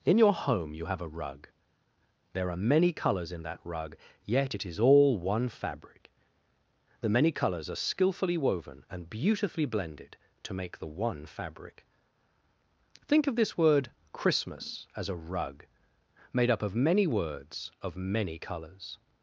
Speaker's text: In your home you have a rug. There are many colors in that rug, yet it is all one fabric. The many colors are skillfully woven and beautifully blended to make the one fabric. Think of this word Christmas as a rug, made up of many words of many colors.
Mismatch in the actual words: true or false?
false